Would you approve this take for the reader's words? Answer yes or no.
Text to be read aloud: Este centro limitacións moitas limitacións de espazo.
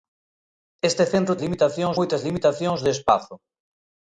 yes